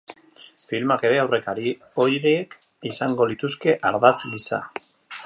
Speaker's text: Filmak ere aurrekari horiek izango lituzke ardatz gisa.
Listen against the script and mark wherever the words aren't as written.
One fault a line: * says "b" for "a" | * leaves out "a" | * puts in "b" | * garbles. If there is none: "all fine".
all fine